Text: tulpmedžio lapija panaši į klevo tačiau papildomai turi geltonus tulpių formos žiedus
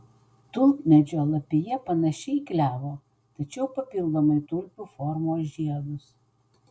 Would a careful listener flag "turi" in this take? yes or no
yes